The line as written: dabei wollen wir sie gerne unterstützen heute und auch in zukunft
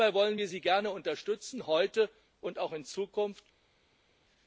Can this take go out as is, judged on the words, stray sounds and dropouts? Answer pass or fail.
pass